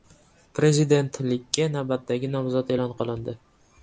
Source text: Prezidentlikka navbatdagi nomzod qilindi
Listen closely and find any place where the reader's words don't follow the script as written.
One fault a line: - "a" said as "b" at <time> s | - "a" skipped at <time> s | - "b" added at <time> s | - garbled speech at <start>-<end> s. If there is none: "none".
- "e'lon" added at 2.8 s